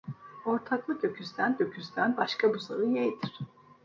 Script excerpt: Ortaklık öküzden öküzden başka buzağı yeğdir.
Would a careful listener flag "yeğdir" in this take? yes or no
no